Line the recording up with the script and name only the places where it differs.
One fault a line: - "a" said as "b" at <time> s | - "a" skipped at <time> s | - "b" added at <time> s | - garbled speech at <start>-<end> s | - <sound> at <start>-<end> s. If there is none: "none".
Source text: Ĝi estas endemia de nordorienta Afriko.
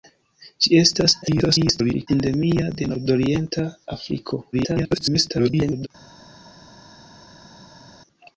- garbled speech at 1.2-2.1 s
- garbled speech at 4.5-5.9 s